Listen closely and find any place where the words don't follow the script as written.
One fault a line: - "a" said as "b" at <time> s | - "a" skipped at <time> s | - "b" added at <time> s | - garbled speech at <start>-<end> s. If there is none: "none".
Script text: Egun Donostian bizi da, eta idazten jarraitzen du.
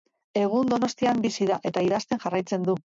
none